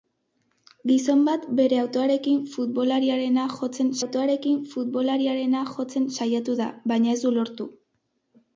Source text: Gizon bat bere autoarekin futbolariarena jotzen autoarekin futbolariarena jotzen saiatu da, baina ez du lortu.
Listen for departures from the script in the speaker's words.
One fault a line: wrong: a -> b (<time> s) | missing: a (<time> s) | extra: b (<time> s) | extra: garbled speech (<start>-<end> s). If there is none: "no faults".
no faults